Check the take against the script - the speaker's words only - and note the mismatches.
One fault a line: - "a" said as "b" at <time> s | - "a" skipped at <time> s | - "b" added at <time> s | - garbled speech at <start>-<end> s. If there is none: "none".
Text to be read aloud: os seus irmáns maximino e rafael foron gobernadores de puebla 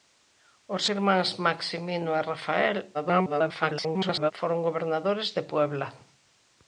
- "seus" skipped at 0.8 s
- garbled speech at 2.9-4.3 s